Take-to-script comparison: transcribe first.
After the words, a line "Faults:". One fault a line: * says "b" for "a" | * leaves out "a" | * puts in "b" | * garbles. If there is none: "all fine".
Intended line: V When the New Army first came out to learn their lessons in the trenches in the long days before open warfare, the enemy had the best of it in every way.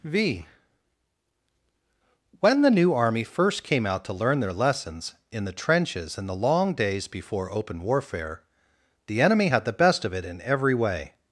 V When the New Army first came out to learn their lessons in the trenches in the long days before open warfare, the enemy had the best of it in every way.
Faults:
all fine